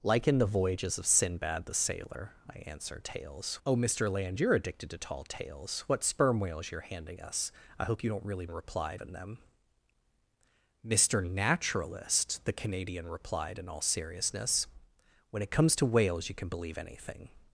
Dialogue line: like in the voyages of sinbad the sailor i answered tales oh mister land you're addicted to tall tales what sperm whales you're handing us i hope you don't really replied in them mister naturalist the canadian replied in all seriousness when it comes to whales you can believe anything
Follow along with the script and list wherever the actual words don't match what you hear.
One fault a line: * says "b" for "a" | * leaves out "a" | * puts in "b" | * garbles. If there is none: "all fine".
all fine